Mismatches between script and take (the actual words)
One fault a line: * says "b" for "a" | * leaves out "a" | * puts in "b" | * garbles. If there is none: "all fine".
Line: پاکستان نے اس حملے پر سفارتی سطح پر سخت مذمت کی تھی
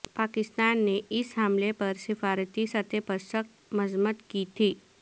all fine